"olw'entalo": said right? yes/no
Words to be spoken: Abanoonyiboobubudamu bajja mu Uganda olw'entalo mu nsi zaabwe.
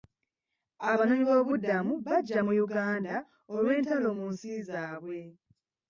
yes